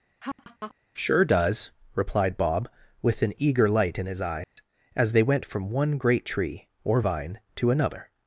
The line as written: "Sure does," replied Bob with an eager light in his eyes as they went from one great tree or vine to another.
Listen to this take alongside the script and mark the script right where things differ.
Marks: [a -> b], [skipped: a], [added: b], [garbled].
"Sure does," replied Bob with an eager light in his eyes as they went from one great tree or vine to another.